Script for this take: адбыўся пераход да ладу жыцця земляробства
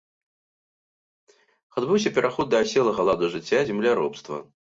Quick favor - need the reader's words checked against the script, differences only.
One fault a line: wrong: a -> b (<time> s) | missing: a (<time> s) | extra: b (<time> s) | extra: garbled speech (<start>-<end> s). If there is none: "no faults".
extra: аселага (2.7 s)